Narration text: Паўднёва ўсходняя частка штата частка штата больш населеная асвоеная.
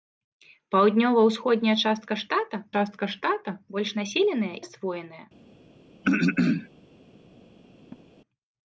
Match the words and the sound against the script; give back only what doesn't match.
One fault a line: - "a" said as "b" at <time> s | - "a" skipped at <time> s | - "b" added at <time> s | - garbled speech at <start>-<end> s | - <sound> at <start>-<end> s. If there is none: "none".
- throat clearing at 6.0-6.7 s
- laugh at 7.9-8.0 s